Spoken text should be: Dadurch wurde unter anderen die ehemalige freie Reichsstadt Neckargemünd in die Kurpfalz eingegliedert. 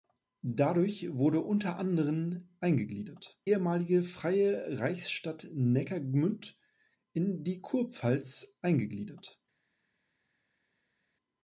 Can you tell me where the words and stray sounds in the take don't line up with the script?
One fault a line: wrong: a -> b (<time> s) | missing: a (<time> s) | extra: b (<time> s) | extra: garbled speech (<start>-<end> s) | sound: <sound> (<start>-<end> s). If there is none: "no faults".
wrong: die -> eingegliedert (2.6 s)